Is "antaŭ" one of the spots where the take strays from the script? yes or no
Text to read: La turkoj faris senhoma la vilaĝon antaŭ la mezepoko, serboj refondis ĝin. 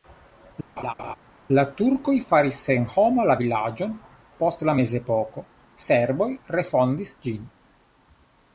yes